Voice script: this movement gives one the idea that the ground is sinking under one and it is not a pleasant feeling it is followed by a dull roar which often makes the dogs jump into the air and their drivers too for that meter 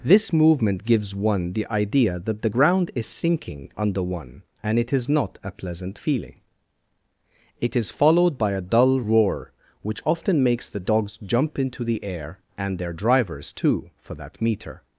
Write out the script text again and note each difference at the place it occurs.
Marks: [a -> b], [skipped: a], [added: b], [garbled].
this movement gives one the idea that the ground is sinking under one and it is not a pleasant feeling it is followed by a dull roar which often makes the dogs jump into the air and their drivers too for that meter